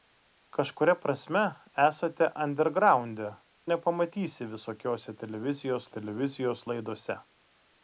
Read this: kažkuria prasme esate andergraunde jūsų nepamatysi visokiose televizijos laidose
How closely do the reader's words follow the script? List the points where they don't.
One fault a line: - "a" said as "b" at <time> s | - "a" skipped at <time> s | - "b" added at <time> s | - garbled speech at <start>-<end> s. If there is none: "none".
- "jūsų" skipped at 3.3 s
- "televizijos" added at 6.0 s